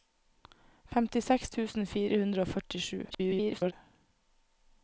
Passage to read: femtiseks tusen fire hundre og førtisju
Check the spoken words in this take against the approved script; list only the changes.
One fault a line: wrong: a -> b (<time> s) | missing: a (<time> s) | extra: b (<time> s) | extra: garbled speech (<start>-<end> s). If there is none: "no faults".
extra: garbled speech (3.1-3.7 s)